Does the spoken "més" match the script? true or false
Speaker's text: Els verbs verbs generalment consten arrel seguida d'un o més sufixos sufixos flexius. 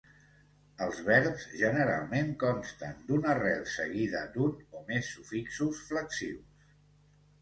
true